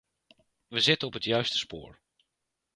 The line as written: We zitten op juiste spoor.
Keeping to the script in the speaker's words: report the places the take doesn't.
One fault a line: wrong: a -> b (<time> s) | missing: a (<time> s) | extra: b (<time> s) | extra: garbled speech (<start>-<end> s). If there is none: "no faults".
extra: het (1.1 s)